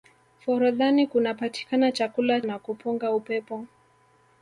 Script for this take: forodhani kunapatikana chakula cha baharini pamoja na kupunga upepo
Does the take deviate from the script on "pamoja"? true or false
true